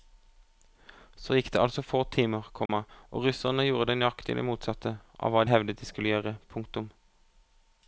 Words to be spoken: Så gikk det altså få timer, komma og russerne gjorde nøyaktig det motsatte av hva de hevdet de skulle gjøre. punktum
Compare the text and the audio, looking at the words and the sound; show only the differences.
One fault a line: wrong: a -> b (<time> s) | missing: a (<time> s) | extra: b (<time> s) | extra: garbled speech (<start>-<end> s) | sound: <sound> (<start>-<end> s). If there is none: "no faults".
sound: dropout (2.7-2.7 s)
missing: de (5.5 s)